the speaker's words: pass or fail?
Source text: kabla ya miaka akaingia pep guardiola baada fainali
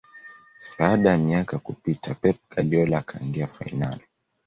fail